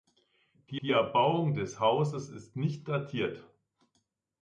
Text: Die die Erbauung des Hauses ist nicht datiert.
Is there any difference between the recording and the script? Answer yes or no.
no